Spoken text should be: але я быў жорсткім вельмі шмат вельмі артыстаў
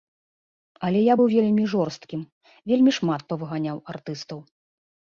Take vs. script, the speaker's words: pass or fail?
fail